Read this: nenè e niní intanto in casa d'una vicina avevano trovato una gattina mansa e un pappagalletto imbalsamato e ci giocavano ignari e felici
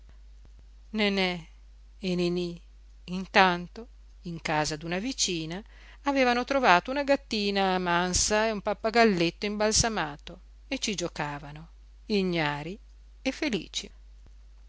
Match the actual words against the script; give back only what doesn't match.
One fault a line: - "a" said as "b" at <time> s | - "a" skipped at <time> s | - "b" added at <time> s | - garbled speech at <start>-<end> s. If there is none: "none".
none